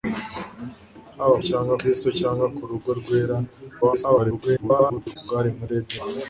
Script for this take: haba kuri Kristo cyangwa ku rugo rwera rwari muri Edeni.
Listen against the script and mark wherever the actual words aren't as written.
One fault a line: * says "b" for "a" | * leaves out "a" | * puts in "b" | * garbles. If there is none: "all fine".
* says "cyangwa" for "kuri"
* garbles